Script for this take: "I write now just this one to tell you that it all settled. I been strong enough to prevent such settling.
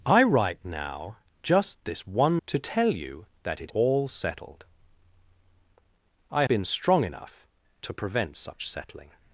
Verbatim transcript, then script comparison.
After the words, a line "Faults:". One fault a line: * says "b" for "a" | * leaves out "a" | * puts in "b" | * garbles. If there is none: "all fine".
"I write now just this one to tell you that it all settled. I been strong enough to prevent such settling.
Faults:
all fine